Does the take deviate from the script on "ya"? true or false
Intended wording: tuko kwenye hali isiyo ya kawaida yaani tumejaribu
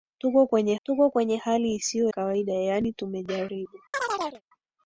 true